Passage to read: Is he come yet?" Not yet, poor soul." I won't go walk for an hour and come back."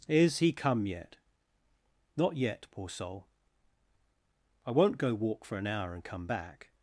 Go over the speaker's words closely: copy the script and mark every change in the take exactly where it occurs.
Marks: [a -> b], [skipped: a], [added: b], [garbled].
Is he come yet?" Not yet, poor soul." I won't go walk for an hour and come back."